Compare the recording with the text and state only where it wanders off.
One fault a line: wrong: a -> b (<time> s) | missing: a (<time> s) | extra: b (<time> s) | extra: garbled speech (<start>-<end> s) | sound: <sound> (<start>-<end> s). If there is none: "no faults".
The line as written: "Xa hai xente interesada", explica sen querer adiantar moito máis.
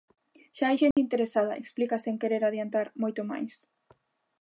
sound: dropout (0.9-1.0 s)